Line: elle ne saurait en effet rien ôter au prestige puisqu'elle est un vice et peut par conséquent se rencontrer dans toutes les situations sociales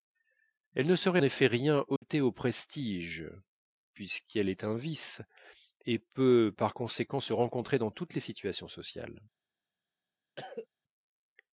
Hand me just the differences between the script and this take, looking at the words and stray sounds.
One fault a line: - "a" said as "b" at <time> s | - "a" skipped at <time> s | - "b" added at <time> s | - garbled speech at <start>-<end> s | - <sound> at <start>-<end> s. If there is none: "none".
- "en" skipped at 1.2 s
- dropout at 2.0-2.0 s
- cough at 10.4-10.7 s